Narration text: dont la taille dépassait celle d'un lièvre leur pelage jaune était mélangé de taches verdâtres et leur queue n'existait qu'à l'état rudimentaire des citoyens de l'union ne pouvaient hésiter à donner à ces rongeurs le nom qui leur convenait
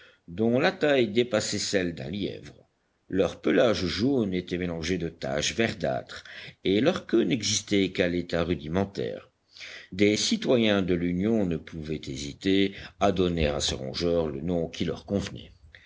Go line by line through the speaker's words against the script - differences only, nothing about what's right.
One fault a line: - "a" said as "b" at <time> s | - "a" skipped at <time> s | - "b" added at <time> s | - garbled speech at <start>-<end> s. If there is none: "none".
none